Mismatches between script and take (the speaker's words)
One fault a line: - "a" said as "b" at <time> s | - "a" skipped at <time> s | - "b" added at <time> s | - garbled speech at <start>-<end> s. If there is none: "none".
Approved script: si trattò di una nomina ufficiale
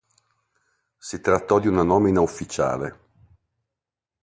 none